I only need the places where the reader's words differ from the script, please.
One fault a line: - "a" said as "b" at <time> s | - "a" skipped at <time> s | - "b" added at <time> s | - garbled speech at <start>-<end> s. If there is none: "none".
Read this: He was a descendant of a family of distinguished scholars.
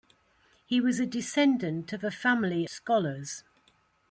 - "of distinguished" skipped at 2.7 s